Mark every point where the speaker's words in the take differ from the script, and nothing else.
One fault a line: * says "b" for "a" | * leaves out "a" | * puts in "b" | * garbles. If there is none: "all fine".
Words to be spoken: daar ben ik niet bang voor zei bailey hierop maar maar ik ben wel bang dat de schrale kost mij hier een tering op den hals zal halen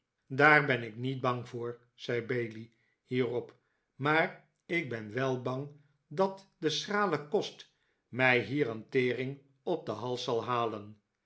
* leaves out "maar"